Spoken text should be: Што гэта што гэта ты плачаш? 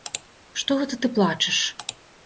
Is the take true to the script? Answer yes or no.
no